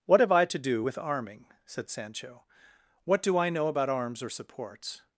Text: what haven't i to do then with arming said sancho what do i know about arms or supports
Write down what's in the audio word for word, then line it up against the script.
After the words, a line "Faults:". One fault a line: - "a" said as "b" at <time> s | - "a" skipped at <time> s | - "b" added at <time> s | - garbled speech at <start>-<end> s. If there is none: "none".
what have i to do with arming said sancho what do i know about arms or supports
Faults:
- "haven't" said as "have" at 0.2 s
- "then" skipped at 0.8 s